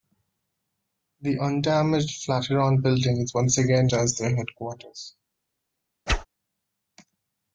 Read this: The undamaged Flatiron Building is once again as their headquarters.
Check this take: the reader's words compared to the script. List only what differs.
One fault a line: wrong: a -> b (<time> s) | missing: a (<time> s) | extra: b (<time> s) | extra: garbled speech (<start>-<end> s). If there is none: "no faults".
no faults